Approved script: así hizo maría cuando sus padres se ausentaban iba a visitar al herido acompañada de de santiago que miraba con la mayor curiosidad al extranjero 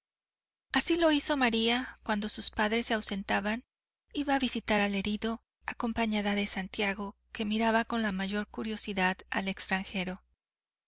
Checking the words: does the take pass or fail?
fail